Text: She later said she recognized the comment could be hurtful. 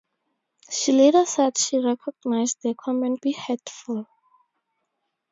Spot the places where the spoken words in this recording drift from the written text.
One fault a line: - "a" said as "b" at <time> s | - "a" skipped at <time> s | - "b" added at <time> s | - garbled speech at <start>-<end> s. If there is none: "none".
- "could" skipped at 3.2 s